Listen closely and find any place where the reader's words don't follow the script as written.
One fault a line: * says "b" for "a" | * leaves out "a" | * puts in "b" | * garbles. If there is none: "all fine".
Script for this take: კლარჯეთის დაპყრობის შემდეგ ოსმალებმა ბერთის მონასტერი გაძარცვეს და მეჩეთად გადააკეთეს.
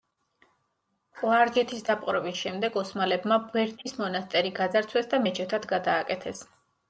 all fine